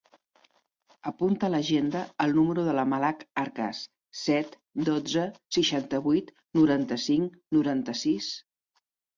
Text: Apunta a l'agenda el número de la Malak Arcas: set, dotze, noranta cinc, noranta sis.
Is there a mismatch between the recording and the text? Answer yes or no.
yes